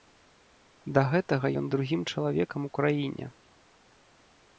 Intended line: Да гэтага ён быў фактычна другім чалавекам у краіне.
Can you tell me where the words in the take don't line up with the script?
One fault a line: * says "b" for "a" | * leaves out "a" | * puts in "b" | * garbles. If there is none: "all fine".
* leaves out "быў фактычна"